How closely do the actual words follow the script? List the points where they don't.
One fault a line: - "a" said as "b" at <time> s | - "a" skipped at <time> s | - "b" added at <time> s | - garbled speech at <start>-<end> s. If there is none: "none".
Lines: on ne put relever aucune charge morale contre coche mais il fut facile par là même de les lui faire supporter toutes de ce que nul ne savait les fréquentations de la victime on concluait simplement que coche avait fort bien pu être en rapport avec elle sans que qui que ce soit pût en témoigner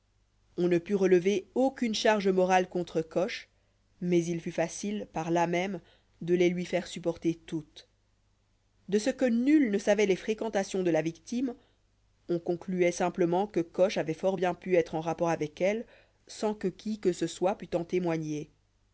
none